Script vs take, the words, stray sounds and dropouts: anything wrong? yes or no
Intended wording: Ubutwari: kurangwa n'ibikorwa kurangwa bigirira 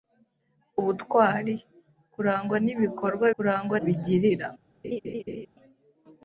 yes